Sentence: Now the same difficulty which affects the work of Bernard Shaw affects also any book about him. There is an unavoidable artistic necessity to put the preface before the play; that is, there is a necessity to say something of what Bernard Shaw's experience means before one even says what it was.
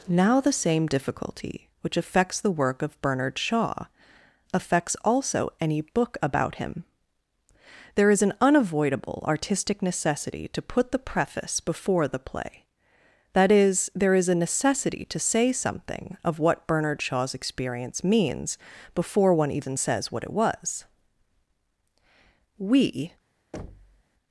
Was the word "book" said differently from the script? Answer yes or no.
no